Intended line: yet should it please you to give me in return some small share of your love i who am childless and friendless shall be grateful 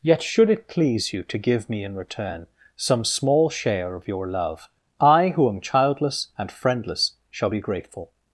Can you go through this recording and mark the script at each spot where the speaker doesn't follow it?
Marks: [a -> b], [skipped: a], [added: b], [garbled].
yet should it please you to give me in return some small share of your love i who am childless and friendless shall be grateful